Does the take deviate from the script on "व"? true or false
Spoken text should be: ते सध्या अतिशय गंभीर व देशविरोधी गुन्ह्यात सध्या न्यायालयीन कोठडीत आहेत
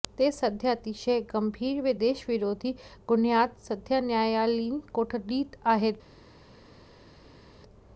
false